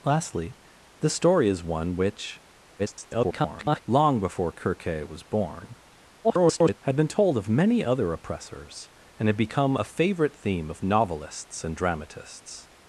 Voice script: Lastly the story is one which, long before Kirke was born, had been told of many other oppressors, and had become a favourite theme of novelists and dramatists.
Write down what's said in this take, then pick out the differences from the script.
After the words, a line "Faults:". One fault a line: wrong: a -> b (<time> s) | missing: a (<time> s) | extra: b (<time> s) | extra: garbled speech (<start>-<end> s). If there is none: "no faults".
Lastly the story is one which, [garbled] long before Kirke was born, [garbled] had been told of many other oppressors, and had become a favourite theme of novelists and dramatists.
Faults:
extra: garbled speech (2.8-3.8 s)
extra: garbled speech (6.2-6.8 s)